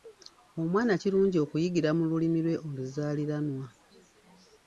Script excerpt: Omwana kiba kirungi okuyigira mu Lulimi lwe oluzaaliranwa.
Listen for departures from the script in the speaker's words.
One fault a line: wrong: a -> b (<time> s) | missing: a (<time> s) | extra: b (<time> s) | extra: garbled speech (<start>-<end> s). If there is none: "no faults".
missing: kiba (0.9 s)